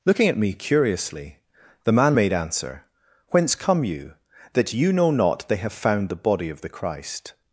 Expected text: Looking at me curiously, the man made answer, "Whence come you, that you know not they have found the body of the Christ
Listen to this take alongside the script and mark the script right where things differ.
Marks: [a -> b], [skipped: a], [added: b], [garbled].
Looking at me curiously, the man made answer, "Whence come you, that you know not they have found the body of the Christ